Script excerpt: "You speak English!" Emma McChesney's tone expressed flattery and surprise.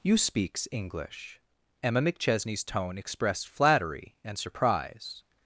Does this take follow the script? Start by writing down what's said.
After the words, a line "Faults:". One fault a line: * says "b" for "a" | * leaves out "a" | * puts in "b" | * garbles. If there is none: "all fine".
"You speaks English!" Emma McChesney's tone expressed flattery and surprise.
Faults:
* says "speaks" for "speak"